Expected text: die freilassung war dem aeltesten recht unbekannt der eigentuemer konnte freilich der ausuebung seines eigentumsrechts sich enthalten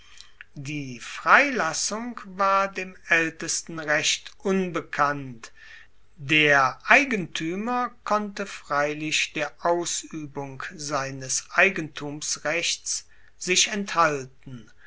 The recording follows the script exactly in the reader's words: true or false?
true